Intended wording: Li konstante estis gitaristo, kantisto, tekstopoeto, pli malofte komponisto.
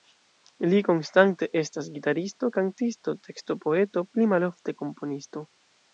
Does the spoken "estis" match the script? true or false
false